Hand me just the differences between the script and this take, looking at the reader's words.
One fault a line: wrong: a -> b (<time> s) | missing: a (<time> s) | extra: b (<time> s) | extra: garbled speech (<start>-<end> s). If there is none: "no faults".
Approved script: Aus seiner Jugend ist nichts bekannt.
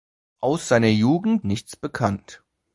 missing: ist (1.4 s)